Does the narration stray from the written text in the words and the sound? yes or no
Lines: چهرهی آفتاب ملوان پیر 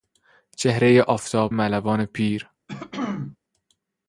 yes